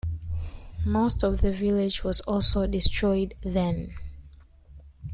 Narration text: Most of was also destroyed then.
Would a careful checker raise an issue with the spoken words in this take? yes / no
yes